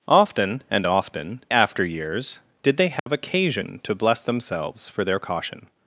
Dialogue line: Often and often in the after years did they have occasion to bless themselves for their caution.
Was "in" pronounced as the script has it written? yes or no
no